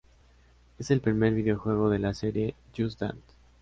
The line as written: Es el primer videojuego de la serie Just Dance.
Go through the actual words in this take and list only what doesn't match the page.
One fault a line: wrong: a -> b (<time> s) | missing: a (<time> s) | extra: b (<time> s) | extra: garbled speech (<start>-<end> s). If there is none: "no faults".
no faults